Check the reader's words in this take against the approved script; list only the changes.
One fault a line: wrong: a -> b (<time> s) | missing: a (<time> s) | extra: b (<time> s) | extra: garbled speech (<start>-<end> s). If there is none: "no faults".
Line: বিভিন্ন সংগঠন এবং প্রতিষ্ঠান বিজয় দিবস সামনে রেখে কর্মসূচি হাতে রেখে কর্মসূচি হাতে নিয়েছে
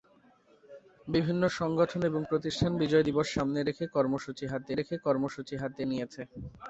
no faults